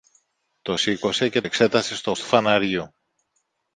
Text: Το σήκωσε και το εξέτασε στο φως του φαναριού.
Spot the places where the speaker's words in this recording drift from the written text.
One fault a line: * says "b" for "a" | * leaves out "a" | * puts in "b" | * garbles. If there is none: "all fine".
* leaves out "το"
* leaves out "φως"